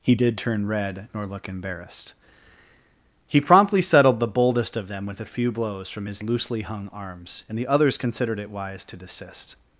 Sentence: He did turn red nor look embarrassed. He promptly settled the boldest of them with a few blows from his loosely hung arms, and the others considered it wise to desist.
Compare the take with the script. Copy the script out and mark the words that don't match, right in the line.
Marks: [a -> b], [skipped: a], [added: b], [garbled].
He did turn red nor look embarrassed. He promptly settled the boldest of them with a few blows from his loosely hung arms, and the others considered it wise to desist.